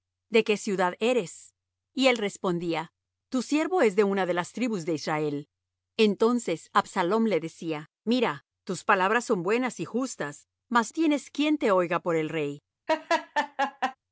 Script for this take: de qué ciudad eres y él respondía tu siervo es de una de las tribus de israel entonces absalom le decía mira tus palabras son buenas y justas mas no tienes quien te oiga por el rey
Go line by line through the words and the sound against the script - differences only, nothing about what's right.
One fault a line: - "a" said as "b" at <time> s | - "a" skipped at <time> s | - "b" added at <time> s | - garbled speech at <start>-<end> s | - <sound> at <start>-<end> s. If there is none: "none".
- "no" skipped at 10.9 s
- laugh at 12.9-14.0 s